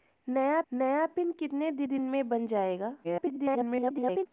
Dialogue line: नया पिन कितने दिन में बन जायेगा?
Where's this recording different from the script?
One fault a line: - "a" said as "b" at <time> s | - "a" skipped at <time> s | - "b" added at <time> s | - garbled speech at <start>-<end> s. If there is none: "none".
- "नया" added at 0.7 s
- "दिन" added at 1.8 s
- garbled speech at 3.0-4.3 s